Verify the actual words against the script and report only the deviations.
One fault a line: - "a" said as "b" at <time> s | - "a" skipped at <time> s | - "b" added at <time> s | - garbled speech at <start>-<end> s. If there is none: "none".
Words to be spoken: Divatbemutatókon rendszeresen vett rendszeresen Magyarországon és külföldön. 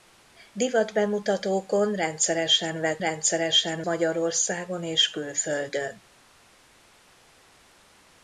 none